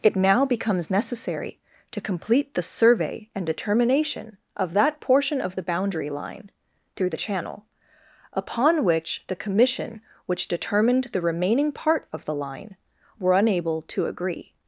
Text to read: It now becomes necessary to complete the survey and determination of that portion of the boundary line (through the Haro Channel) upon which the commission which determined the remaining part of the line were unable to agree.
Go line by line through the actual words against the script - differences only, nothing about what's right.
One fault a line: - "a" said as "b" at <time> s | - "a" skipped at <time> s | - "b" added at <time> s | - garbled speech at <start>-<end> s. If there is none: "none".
- "Haro" skipped at 7.2 s